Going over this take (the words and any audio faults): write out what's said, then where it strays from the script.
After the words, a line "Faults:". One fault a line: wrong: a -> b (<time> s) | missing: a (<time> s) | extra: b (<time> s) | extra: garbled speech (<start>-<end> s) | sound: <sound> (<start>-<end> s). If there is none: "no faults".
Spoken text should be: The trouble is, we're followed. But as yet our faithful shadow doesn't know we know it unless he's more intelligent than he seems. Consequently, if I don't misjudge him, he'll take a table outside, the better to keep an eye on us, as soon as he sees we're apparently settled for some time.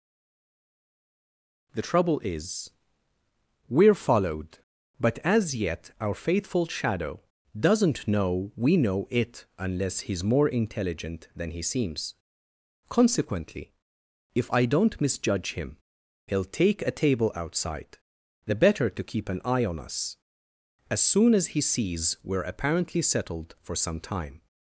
The trouble is, we're followed. But as yet our faithful shadow doesn't know we know it unless he's more intelligent than he seems. Consequently, if I don't misjudge him, he'll take a table outside, the better to keep an eye on us, as soon as he sees we're apparently settled for some time.
Faults:
no faults